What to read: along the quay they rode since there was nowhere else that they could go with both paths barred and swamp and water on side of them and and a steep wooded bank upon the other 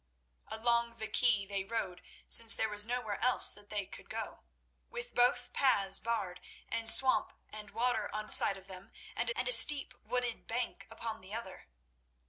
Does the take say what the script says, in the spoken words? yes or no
yes